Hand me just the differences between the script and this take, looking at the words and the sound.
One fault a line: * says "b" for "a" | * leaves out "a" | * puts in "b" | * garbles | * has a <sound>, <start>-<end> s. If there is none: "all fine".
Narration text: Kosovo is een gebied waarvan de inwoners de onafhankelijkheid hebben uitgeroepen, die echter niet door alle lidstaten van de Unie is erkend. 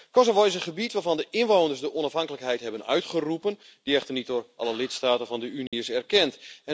* has a dropout, 5.7-5.7 s